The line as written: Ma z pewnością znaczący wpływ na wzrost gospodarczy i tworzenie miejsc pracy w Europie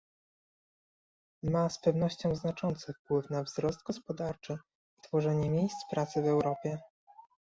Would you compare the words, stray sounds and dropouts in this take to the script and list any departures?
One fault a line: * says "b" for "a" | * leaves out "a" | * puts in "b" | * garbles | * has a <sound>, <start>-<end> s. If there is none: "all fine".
all fine